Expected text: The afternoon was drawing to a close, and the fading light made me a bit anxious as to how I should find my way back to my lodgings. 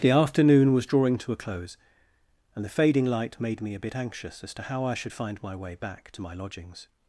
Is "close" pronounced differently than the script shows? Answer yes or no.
no